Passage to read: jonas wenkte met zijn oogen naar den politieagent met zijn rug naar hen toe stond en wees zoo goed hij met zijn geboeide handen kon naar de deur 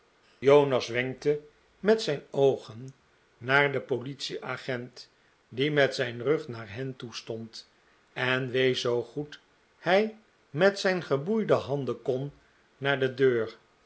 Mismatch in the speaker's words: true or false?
true